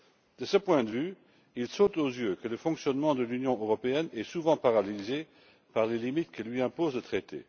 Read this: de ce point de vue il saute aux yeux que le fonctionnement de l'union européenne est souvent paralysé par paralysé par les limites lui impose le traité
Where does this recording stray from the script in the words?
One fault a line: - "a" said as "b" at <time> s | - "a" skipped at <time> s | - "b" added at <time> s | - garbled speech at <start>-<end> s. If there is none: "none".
- "paralysé par" skipped at 5.9 s
- "que" added at 6.3 s